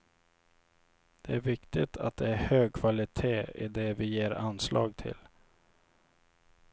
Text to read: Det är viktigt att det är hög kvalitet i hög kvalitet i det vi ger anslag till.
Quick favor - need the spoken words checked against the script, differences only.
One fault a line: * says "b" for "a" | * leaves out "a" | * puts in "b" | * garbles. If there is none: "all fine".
* leaves out "hög kvalitet i"